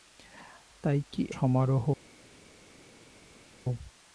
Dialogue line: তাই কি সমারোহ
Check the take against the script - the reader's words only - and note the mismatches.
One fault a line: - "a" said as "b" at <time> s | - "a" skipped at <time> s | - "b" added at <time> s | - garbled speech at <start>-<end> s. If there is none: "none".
none